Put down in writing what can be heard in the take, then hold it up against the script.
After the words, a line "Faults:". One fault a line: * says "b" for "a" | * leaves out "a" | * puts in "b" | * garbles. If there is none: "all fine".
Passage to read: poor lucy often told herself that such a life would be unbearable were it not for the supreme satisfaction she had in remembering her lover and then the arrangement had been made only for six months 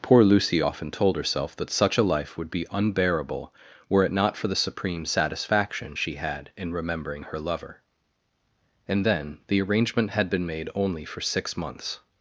poor lucy often told herself that such a life would be unbearable were it not for the supreme satisfaction she had in remembering her lover and then the arrangement had been made only for six months
Faults:
all fine